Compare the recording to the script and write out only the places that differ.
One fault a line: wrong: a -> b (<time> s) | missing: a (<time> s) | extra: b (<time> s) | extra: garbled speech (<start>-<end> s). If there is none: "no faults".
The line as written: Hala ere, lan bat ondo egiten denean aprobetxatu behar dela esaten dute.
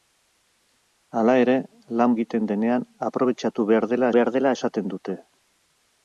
missing: bat ondo (2.1 s)
extra: behar dela (4.2 s)